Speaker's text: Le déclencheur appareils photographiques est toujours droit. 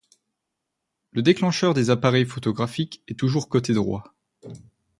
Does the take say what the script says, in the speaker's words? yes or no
no